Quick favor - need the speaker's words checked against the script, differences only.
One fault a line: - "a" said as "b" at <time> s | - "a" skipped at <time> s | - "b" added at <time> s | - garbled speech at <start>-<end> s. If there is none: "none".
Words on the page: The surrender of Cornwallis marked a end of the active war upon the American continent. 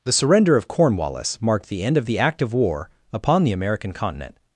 - "a" said as "the" at 1.7 s